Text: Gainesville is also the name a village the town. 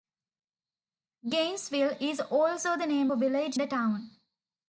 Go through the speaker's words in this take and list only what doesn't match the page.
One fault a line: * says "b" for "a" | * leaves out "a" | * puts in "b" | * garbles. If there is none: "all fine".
all fine